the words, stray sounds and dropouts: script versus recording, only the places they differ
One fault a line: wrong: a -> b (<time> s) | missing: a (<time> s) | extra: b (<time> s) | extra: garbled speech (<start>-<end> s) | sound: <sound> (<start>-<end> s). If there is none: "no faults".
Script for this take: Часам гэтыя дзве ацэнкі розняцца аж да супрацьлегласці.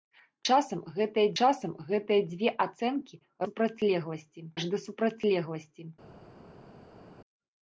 extra: часам гэтыя (1.4 s)
wrong: розняцца -> супрацьлегласці (3.5 s)